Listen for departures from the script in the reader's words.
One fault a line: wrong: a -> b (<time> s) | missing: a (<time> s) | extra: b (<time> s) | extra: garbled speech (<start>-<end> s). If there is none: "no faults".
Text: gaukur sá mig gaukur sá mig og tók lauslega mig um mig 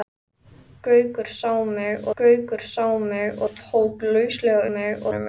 no faults